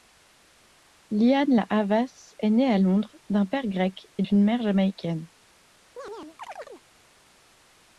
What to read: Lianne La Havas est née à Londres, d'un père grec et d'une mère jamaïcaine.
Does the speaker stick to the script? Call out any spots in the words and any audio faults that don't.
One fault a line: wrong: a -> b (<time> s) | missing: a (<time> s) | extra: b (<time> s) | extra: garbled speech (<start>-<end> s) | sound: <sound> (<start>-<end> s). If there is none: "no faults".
sound: chirp (6.0-6.8 s)